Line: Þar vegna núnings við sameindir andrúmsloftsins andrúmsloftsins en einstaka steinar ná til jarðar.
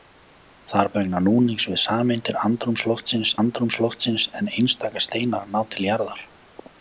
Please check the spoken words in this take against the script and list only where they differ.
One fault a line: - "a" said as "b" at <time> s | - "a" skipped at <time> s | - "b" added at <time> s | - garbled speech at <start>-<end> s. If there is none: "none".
none